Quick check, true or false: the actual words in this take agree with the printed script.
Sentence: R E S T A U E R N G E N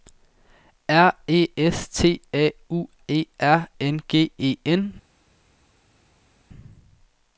true